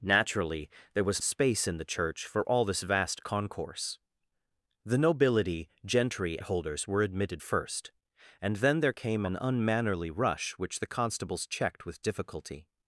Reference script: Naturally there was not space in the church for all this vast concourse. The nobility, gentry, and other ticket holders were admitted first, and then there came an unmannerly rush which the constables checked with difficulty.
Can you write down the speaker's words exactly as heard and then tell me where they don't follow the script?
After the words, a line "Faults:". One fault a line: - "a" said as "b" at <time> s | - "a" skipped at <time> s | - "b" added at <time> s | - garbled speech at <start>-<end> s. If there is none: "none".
Naturally there was space in the church for all this vast concourse. The nobility, gentry, holders were admitted first, and then there came an unmannerly rush which the constables checked with difficulty.
Faults:
- "not" skipped at 1.2 s
- "and other ticket" skipped at 6.4 s